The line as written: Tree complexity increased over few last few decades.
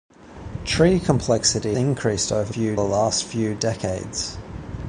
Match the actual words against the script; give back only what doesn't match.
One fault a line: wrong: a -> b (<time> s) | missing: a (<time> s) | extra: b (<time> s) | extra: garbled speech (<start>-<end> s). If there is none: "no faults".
no faults